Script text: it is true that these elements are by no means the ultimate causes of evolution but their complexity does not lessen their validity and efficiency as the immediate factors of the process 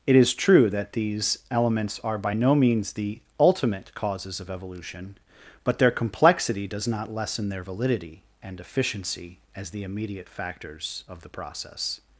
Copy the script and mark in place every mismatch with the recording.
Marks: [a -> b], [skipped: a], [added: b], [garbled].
it is true that these elements are by no means the ultimate causes of evolution but their complexity does not lessen their validity and efficiency as the immediate factors of the process